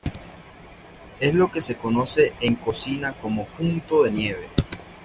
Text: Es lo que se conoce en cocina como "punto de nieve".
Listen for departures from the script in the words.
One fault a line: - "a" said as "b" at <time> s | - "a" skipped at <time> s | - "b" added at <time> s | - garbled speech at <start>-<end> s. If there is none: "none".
none